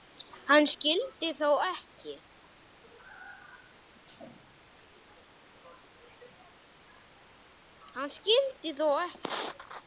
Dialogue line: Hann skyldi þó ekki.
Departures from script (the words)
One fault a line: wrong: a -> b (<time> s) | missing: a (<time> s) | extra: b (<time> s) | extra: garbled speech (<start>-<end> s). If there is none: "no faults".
no faults